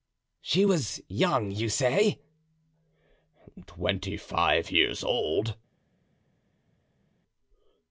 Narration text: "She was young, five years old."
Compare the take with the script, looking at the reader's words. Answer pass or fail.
fail